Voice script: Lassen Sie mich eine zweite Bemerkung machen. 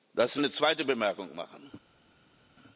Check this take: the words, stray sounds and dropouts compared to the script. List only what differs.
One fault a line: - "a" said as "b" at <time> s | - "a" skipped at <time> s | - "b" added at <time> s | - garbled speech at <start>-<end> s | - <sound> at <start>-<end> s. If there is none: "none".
- "mich" skipped at 0.4 s